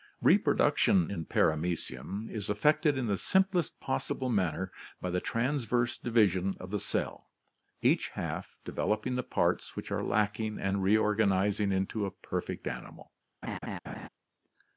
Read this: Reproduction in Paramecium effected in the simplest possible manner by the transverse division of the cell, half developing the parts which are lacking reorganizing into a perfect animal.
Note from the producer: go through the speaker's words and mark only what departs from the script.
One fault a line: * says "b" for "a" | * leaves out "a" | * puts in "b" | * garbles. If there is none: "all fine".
* puts in "is"
* puts in "each"
* puts in "and"